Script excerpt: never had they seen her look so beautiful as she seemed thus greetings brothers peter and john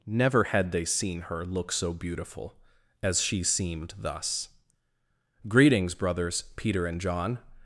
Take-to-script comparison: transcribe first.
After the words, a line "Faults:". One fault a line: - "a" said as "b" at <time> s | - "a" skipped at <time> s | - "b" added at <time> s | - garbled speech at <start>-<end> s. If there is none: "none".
never had they seen her look so beautiful as she seemed thus greetings brothers peter and john
Faults:
none